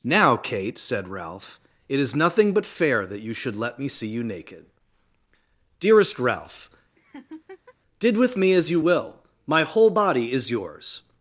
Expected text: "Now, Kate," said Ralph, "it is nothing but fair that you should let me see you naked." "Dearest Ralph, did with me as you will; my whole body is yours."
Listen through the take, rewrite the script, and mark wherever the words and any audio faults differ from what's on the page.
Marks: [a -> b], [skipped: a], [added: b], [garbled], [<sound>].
"Now, Kate," said Ralph, "it is nothing but fair that you should let me see you naked." "Dearest Ralph, [laugh] did with me as you will; my whole body is yours."